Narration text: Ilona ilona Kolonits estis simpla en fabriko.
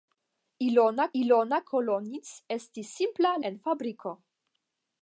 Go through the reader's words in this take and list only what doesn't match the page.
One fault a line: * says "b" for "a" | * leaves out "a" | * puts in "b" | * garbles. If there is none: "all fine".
all fine